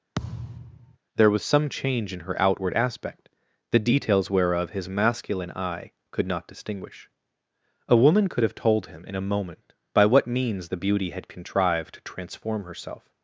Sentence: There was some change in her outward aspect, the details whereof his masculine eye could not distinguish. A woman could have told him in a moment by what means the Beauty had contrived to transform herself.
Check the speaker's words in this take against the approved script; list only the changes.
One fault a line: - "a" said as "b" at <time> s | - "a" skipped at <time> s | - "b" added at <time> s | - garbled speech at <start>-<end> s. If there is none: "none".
none